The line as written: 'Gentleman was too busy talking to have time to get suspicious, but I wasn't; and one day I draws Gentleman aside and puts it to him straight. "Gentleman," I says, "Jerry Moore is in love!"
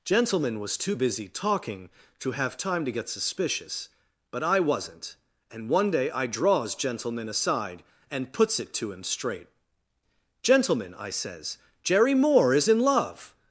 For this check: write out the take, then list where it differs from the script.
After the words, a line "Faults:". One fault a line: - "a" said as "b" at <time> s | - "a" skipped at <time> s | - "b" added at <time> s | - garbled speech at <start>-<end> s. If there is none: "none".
'Gentleman was too busy talking to have time to get suspicious, but I wasn't; and one day I draws Gentleman aside and puts it to him straight. "Gentleman," I says, "Jerry Moore is in love!"
Faults:
none